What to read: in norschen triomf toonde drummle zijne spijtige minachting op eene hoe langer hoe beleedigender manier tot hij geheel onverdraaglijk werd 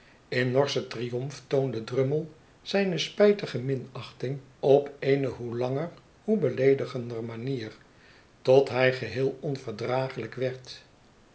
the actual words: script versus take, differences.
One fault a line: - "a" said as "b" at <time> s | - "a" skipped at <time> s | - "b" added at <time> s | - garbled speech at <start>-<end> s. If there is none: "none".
none